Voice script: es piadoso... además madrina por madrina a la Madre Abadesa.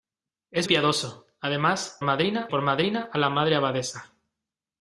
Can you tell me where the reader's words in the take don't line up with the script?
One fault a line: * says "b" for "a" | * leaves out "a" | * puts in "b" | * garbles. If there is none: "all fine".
all fine